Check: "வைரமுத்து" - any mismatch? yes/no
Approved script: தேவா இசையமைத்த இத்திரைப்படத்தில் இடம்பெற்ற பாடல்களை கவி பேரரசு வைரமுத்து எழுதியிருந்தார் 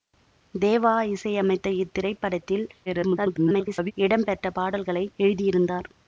yes